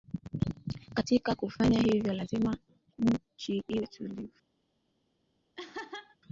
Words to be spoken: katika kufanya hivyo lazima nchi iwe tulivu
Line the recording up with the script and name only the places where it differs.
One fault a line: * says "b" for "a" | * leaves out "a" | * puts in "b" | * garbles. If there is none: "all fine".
all fine